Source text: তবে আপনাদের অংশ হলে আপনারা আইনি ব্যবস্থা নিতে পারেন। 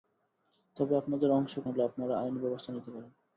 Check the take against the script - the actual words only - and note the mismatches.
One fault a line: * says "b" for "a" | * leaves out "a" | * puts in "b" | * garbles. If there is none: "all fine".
all fine